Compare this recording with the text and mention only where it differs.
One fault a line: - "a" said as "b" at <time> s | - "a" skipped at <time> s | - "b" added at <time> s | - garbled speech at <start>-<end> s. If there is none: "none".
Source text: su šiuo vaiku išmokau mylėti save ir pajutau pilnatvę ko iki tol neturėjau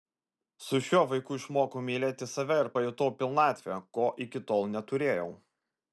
none